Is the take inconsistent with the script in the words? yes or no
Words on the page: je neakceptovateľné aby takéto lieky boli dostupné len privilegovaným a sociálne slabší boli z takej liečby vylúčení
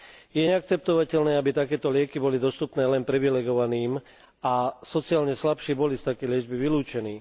no